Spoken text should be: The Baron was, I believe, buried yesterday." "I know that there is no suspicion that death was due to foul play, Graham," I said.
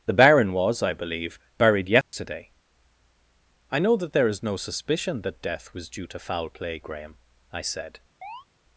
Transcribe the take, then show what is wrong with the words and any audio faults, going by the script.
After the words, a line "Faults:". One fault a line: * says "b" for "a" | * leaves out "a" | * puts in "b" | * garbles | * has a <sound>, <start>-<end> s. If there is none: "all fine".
The Baron was, I believe, buried yesterday." "I know that there is no suspicion that death was due to foul play, Graham," I said.
Faults:
* has a dropout, 2.0-2.1 s
* has a chirp, 8.2-8.5 s